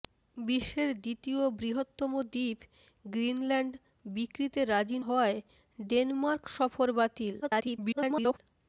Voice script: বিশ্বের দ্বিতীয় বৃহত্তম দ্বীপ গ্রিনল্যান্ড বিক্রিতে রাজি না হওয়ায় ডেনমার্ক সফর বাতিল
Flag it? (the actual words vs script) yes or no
yes